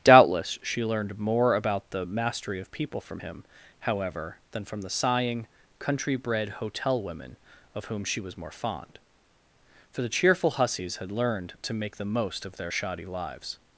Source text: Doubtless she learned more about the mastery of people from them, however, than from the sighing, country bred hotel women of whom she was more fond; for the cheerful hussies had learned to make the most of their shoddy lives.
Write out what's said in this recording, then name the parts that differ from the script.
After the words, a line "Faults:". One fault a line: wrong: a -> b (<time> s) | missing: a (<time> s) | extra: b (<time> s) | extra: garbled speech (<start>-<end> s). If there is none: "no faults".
Doubtless she learned more about the mastery of people from him, however, than from the sighing, country bred hotel women of whom she was more fond; for the cheerful hussies had learned to make the most of their shoddy lives.
Faults:
wrong: them -> him (3.2 s)